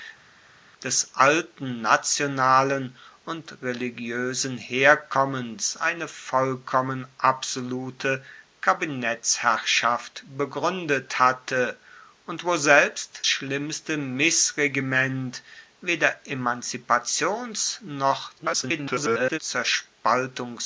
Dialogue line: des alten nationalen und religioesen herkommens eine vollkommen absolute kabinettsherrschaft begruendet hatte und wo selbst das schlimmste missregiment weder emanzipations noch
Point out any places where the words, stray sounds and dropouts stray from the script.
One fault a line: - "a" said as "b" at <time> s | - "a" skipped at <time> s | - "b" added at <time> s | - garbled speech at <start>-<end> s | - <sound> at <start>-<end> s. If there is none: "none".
- "das" skipped at 13.2 s
- garbled speech at 18.4-19.4 s